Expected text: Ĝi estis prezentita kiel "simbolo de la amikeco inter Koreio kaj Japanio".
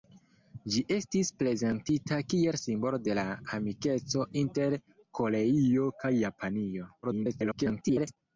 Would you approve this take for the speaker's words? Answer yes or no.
no